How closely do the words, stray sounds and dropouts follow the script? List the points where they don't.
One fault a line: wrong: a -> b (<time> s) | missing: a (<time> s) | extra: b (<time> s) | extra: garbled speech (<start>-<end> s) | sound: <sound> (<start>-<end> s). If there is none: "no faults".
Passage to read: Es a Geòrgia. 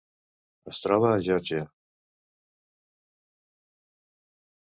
extra: troba (0.8 s)